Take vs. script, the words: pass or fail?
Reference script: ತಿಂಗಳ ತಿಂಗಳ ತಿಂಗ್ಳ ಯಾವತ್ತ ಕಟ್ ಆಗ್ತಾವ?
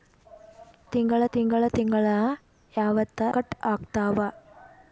pass